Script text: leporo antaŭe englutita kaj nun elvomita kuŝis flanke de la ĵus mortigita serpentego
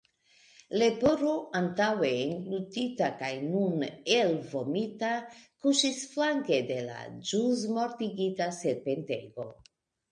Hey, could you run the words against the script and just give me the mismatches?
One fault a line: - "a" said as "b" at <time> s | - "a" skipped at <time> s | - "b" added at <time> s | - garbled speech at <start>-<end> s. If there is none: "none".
none